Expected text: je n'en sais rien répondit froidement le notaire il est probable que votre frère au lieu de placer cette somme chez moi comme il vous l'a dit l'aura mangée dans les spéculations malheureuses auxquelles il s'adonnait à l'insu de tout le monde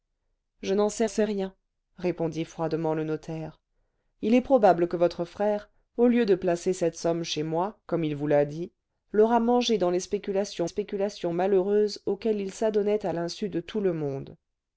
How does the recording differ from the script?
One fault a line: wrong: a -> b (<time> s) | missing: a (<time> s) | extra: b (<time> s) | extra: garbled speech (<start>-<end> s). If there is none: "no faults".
extra: sais (1.1 s)
extra: spéculations (10.7 s)